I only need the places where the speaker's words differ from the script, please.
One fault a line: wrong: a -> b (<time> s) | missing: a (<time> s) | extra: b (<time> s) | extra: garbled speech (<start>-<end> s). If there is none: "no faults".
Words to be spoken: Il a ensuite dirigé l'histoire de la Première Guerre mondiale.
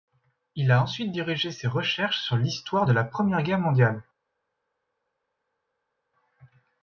extra: ses recherches sur (1.5 s)